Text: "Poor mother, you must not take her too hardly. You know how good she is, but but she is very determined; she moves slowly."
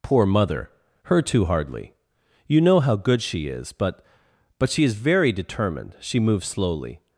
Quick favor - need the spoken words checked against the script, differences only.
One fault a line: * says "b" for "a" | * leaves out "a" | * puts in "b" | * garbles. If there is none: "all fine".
* leaves out "you must not take"